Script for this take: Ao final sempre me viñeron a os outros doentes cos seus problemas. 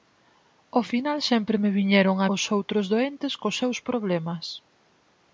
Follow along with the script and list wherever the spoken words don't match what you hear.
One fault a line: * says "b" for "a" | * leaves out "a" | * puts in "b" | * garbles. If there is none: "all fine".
all fine